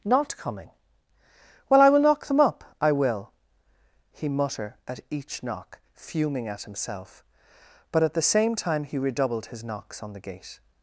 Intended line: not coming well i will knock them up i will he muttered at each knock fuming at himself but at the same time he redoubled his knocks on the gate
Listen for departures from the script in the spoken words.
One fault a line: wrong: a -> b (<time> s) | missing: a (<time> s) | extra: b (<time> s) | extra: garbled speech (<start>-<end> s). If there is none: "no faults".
wrong: muttered -> mutter (4.3 s)